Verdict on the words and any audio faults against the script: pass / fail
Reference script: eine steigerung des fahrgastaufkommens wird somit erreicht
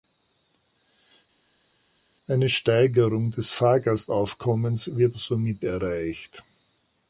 pass